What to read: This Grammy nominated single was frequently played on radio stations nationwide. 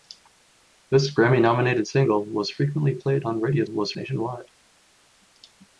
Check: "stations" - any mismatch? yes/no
yes